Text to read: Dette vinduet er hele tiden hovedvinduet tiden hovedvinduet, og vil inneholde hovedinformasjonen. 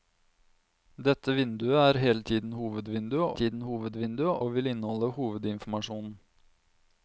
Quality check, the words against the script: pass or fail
pass